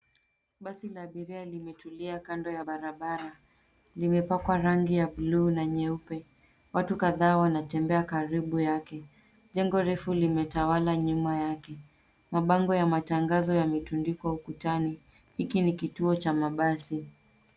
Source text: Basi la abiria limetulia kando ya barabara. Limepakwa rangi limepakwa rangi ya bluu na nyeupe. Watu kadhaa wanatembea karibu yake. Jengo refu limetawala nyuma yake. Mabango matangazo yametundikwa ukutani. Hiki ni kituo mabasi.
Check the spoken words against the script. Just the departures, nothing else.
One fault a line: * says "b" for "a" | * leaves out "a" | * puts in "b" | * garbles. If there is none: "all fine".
* leaves out "limepakwa rangi"
* puts in "ya"
* puts in "cha"